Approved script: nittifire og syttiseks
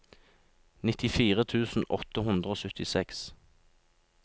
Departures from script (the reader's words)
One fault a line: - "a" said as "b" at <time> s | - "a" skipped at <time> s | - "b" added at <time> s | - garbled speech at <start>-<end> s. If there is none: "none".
- "tusen åtte hundre" added at 1.5 s